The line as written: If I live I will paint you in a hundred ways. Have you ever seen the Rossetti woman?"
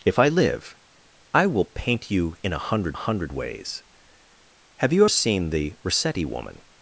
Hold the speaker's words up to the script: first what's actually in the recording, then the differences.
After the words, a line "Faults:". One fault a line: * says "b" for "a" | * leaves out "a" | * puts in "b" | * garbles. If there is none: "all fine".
If I live I will paint you in a hundred hundred ways. Have you seen the Rossetti woman?"
Faults:
* puts in "hundred"
* leaves out "ever"